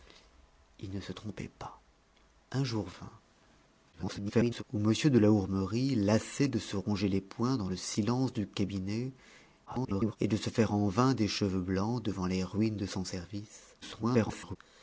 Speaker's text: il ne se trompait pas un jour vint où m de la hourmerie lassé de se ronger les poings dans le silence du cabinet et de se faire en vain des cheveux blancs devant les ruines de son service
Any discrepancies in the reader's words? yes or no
yes